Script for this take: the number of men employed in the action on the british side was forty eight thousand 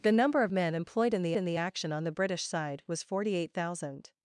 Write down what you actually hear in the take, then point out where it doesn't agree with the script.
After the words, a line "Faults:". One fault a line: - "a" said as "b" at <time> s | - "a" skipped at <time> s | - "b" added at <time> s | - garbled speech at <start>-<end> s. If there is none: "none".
the number of men employed in the in the action on the british side was forty eight thousand
Faults:
- "in the" added at 1.3 s